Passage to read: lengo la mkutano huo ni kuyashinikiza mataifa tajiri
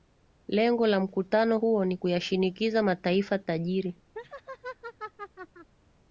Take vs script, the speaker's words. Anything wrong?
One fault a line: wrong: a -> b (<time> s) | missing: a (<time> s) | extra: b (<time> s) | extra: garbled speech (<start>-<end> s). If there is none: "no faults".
no faults